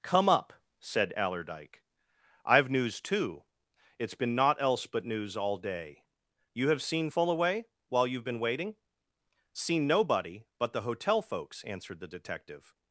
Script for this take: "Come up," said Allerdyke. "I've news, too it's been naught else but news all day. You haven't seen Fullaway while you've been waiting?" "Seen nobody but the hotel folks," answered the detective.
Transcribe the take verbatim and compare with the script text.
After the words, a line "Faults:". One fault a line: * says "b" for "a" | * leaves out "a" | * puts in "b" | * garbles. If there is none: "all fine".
"Come up," said Allerdyke. "I've news, too it's been naught else but news all day. You have seen Fullaway while you've been waiting?" "Seen nobody but the hotel folks," answered the detective.
Faults:
* says "have" for "haven't"